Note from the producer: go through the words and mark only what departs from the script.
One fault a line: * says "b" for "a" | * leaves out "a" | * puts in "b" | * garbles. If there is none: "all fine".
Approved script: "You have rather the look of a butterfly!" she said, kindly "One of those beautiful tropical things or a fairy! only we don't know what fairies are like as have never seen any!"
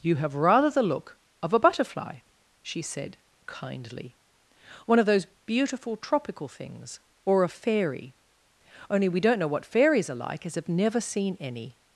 all fine